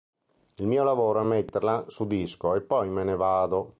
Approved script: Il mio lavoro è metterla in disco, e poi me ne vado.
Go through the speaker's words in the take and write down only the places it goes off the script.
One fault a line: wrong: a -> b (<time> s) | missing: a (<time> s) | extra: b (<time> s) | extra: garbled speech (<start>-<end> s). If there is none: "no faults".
wrong: in -> su (1.9 s)